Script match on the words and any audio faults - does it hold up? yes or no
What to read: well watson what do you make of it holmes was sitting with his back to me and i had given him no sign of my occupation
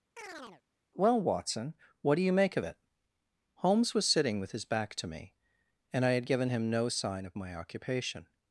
no